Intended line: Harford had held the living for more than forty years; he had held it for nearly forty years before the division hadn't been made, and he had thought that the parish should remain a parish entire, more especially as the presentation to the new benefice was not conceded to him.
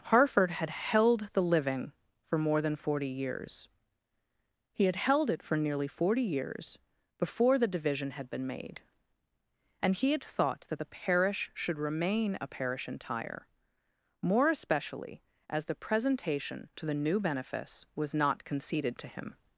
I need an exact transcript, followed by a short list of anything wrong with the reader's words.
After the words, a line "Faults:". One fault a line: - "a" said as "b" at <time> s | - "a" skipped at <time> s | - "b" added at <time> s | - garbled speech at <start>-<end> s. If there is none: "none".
Harford had held the living for more than forty years; he had held it for nearly forty years before the division had been made, and he had thought that the parish should remain a parish entire, more especially as the presentation to the new benefice was not conceded to him.
Faults:
- "hadn't" said as "had" at 8.1 s